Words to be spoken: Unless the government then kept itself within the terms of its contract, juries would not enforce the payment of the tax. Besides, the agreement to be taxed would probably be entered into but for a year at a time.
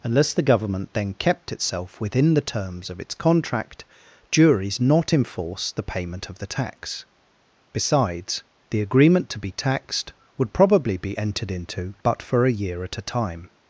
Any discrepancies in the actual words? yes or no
yes